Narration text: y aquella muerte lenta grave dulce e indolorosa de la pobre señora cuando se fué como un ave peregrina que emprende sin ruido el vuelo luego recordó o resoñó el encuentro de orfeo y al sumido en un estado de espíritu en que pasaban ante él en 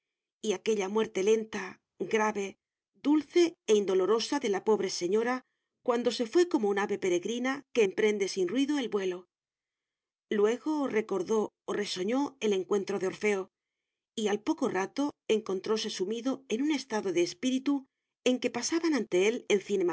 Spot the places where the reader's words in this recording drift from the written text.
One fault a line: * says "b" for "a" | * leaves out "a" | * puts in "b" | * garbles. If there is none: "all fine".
* puts in "poco rato encontróse"